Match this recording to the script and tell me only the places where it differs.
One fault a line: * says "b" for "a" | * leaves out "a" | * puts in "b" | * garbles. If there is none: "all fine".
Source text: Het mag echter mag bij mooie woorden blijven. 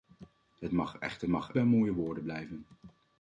all fine